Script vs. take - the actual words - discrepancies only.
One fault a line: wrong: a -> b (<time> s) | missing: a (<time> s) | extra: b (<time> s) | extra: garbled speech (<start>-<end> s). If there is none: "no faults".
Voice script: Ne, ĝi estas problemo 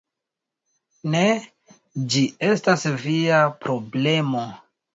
extra: via (3.1 s)